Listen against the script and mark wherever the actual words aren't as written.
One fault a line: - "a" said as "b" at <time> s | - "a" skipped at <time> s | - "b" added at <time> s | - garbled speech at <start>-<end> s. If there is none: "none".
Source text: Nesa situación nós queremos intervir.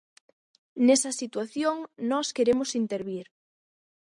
none